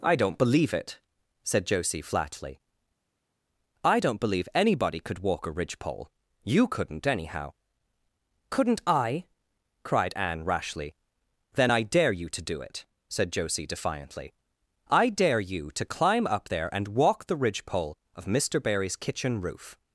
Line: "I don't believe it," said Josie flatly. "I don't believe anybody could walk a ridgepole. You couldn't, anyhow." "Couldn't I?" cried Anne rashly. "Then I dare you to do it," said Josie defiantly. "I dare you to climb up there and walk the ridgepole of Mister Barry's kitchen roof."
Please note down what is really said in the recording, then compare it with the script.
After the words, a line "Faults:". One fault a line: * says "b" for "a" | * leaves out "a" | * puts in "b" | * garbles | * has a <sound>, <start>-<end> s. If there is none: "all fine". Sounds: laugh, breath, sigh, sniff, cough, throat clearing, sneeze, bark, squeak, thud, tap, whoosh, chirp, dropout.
"I don't believe it," said Josie flatly. "I don't believe anybody could walk a ridgepole. You couldn't, anyhow." "Couldn't I?" cried Anne rashly. "Then I dare you to do it," said Josie defiantly. "I dare you to climb up there and walk the ridgepole of Mister Barry's kitchen roof."
Faults:
all fine